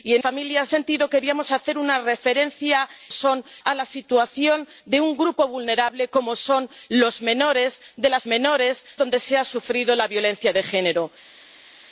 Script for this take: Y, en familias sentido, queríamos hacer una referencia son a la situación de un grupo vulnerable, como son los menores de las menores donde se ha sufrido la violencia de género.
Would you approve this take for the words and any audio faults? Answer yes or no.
yes